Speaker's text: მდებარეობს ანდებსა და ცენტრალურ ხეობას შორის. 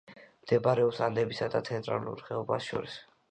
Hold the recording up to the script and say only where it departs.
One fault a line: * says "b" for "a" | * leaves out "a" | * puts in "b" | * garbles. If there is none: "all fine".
all fine